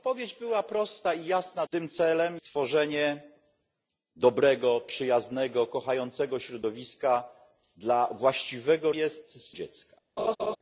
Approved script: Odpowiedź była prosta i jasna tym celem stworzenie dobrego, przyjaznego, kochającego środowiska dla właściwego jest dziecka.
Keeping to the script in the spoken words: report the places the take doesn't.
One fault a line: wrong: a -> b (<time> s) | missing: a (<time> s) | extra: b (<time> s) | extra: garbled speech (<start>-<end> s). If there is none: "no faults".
no faults